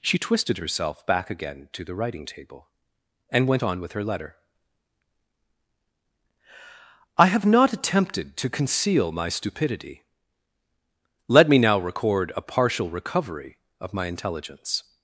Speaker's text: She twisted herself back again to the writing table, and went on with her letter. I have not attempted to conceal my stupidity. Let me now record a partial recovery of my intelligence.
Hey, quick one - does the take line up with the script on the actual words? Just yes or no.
yes